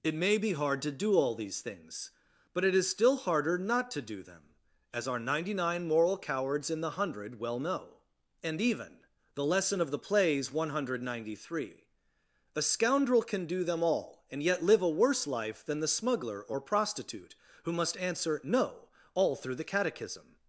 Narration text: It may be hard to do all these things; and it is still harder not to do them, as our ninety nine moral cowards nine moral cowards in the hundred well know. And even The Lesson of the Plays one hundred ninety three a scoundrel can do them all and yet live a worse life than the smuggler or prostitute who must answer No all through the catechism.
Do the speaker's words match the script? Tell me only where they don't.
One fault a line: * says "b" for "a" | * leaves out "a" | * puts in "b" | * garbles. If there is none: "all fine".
* says "but" for "and"
* leaves out "nine moral cowards"